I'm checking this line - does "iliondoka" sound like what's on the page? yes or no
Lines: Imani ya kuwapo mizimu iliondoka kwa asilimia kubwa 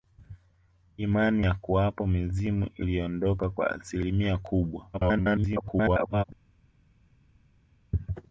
yes